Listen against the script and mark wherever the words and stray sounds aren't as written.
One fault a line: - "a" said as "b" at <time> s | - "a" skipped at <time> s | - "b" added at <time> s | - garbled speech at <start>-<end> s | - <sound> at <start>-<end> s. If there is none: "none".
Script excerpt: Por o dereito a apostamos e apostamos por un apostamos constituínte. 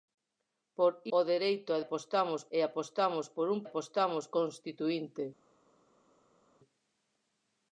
none